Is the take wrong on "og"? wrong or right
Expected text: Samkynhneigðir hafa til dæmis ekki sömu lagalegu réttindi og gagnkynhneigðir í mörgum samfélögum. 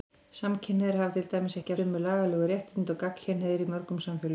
right